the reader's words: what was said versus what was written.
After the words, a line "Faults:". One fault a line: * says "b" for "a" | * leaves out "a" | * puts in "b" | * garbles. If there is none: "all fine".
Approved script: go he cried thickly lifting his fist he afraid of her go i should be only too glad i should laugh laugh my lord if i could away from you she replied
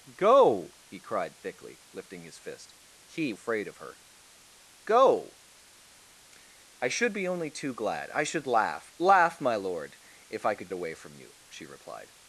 go he cried thickly lifting his fist he afraid of her go i should be only too glad i should laugh laugh my lord if i could away from you she replied
Faults:
all fine